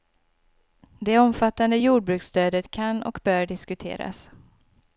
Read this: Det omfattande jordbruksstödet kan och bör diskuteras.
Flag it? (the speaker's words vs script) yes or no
no